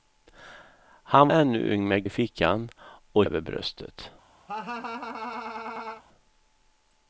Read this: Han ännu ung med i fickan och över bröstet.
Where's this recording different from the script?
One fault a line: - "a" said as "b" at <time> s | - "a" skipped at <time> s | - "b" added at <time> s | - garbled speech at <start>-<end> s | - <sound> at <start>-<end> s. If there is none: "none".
- laugh at 4.5-6.0 s